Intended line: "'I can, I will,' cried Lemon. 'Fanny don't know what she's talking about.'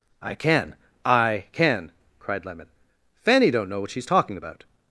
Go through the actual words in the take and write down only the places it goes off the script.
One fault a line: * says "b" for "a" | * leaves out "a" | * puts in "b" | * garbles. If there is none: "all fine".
* says "can" for "will"